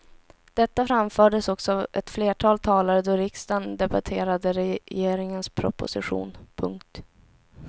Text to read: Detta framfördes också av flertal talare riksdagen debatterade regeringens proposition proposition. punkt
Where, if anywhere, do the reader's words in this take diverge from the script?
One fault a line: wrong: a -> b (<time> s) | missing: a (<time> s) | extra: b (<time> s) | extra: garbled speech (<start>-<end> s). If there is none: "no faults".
extra: ett (1.9 s)
extra: då (3.0 s)
missing: proposition (6.4 s)